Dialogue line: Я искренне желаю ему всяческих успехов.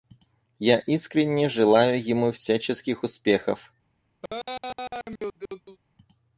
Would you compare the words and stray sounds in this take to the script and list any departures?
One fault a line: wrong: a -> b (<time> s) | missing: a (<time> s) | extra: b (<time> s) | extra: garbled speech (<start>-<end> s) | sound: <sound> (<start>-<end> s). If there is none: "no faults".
sound: laugh (4.2-5.8 s)